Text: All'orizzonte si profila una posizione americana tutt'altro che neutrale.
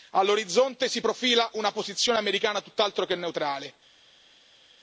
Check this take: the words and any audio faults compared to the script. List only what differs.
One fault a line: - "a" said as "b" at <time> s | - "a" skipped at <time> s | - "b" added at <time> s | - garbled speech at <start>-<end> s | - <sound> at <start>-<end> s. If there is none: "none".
none